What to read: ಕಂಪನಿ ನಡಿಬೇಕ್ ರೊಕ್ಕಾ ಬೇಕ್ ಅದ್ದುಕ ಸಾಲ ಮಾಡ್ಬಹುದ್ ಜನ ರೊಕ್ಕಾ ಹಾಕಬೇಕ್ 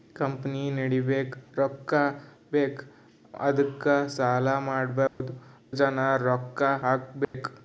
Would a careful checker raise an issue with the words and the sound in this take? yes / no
yes